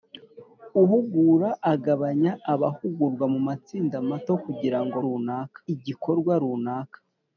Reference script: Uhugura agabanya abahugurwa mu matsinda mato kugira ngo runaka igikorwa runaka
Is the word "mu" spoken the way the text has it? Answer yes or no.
yes